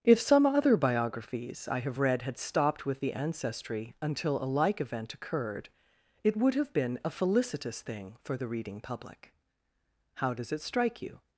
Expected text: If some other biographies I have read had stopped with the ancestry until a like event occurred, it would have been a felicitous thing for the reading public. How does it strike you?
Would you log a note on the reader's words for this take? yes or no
no